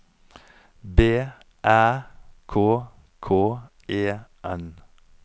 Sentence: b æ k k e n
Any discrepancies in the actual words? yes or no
no